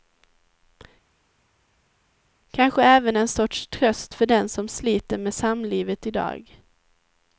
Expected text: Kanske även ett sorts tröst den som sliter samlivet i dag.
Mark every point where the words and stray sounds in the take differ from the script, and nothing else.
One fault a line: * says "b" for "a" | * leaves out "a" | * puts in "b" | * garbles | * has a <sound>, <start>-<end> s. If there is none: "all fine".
* says "en" for "ett"
* puts in "för"
* puts in "med"